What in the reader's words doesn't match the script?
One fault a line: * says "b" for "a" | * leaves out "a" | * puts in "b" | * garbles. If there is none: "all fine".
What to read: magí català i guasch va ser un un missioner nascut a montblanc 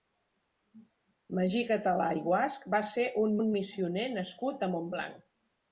all fine